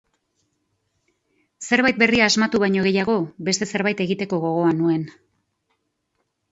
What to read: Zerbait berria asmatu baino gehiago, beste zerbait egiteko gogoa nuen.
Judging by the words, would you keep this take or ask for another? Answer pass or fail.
pass